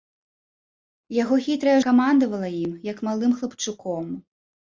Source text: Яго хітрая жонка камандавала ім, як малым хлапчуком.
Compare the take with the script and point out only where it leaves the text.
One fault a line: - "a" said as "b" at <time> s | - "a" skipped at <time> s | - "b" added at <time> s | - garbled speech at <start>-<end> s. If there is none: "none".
- "жонка" skipped at 1.8 s